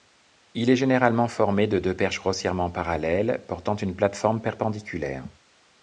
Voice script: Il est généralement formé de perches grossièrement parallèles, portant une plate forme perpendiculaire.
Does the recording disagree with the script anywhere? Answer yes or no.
yes